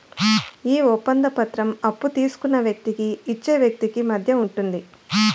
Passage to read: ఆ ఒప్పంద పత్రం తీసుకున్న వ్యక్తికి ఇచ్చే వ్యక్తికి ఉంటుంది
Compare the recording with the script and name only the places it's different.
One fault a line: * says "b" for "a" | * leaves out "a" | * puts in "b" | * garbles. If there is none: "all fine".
* says "ఈ" for "ఆ"
* puts in "అప్పు"
* puts in "మధ్య"